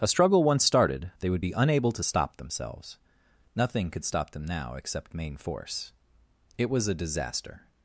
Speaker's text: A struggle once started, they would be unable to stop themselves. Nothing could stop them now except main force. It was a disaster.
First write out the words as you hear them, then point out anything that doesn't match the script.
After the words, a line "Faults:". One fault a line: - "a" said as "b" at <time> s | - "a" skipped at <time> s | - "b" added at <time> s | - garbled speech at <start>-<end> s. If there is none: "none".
A struggle once started, they would be unable to stop themselves. Nothing could stop them now except main force. It was a disaster.
Faults:
none